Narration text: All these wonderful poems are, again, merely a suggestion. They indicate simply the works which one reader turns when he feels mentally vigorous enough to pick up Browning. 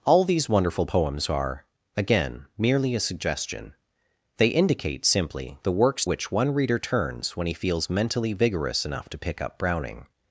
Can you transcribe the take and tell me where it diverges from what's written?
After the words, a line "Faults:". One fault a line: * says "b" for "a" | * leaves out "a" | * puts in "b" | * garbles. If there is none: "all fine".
All these wonderful poems are, again, merely a suggestion. They indicate simply the works which one reader turns when he feels mentally vigorous enough to pick up Browning.
Faults:
all fine